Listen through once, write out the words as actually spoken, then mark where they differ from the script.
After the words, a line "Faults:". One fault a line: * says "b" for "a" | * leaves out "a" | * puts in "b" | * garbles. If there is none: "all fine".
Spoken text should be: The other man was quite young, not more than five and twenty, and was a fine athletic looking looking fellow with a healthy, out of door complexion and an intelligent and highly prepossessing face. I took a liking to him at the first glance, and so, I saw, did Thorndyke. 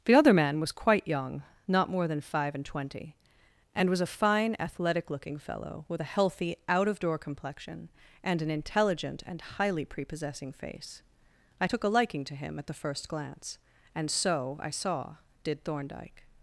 The other man was quite young, not more than five and twenty, and was a fine athletic looking fellow with a healthy, out of door complexion and an intelligent and highly prepossessing face. I took a liking to him at the first glance, and so, I saw, did Thorndyke.
Faults:
* leaves out "looking"